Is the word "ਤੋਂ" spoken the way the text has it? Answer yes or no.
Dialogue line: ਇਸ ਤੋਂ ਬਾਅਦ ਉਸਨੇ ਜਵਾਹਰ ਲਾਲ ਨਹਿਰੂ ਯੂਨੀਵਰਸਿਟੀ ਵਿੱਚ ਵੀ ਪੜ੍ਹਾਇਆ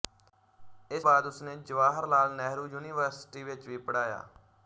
no